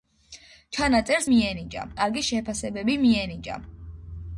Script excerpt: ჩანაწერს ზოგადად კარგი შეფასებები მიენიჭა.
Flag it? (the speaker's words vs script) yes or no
yes